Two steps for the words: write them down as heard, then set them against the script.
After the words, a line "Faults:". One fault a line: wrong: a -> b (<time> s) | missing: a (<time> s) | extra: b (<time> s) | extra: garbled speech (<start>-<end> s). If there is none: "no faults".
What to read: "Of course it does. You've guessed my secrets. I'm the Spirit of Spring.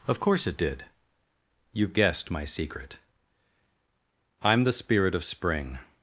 "Of course it did. You've guessed my secret. I'm the Spirit of Spring.
Faults:
wrong: does -> did (0.6 s)
wrong: secrets -> secret (2.4 s)